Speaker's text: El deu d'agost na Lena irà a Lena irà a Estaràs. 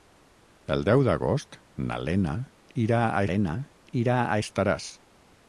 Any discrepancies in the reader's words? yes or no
no